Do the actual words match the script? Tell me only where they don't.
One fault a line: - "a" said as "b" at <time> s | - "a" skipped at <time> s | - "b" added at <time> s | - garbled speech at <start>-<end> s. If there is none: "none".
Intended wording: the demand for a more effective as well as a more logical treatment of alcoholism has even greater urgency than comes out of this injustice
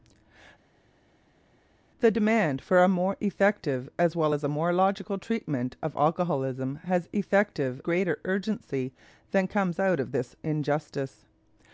- "even" said as "effective" at 7.1 s